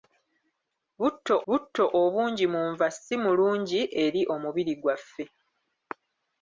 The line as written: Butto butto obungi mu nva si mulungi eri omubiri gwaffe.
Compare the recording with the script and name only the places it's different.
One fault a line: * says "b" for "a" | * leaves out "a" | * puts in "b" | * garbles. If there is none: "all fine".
all fine